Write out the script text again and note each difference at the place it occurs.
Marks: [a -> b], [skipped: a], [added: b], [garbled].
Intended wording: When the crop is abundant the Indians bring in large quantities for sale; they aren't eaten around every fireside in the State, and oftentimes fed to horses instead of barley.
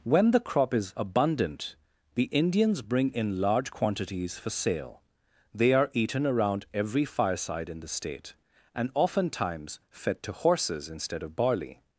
When the crop is abundant the Indians bring in large quantities for sale; they [aren't -> are] eaten around every fireside in the State, and oftentimes fed to horses instead of barley.